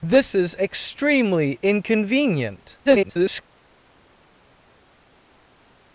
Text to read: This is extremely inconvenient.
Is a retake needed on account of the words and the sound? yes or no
yes